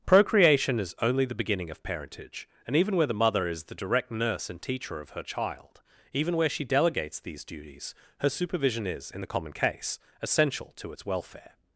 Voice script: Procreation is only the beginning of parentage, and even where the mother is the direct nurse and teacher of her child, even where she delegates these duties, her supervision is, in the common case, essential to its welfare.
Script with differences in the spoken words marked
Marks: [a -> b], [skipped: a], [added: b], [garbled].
Procreation is only the beginning of parentage, and even where the mother is the direct nurse and teacher of her child, even where she delegates these duties, her supervision is, in the common case, essential to its welfare.